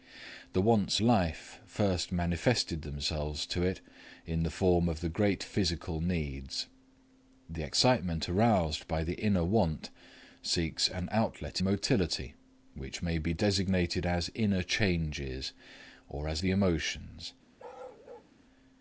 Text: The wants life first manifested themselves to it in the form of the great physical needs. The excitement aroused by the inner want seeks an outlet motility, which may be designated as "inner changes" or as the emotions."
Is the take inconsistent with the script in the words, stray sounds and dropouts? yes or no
yes